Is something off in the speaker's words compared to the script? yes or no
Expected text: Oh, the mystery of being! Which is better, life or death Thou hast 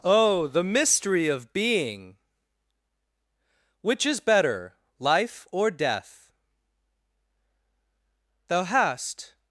no